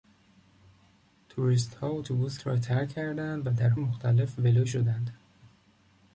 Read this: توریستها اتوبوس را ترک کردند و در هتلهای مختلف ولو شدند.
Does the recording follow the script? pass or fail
fail